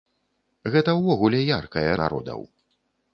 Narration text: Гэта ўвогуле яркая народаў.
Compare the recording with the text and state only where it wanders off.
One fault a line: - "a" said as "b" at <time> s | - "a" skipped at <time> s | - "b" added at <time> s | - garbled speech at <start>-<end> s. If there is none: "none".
none